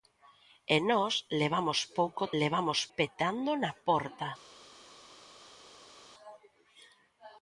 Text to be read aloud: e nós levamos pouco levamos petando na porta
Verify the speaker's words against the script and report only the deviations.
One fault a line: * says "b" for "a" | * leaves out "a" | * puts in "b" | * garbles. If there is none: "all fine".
all fine